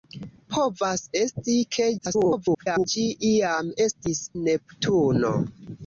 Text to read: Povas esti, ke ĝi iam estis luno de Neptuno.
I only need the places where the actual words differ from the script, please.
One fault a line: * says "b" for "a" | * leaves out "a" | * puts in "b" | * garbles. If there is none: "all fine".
* garbles
* leaves out "luno de"